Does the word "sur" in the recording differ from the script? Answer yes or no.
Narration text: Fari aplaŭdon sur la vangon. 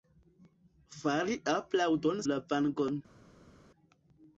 yes